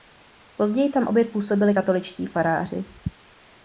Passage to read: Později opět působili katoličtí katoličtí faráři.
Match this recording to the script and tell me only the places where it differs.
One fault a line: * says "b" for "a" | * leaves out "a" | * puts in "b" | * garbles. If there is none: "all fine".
* puts in "tam"
* leaves out "katoličtí"